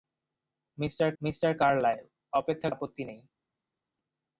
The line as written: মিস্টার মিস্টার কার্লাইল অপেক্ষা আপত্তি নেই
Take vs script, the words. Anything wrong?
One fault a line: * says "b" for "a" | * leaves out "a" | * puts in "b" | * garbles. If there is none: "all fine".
all fine